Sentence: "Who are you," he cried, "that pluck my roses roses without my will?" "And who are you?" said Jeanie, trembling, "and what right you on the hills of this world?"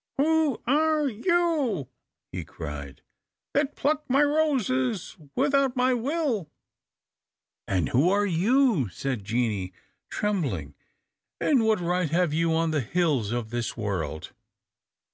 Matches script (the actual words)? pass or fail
fail